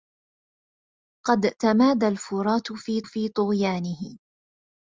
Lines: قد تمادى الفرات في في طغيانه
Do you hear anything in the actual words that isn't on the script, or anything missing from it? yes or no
no